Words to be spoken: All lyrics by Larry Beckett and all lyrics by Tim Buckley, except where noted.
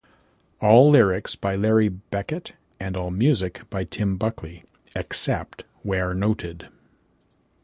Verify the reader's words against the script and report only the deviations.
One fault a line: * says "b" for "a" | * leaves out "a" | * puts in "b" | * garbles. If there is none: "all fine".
* says "music" for "lyrics"